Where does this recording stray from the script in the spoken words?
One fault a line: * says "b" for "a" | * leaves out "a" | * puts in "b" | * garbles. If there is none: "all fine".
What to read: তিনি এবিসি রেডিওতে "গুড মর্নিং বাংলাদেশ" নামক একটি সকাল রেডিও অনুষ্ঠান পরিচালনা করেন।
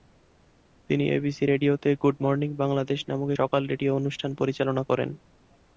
* leaves out "একটি"